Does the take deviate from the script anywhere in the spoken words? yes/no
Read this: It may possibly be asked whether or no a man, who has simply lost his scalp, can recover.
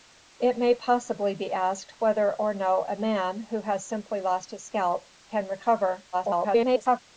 yes